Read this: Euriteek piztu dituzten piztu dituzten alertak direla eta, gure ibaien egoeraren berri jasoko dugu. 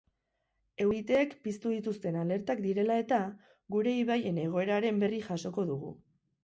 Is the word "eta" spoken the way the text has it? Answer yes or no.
yes